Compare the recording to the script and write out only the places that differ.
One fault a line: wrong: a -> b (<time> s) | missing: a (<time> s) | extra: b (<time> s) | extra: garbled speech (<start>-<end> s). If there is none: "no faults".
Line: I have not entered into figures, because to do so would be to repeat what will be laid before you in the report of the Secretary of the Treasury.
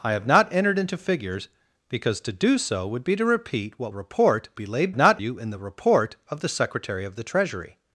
wrong: will -> report (3.9 s)
wrong: before -> not (5.0 s)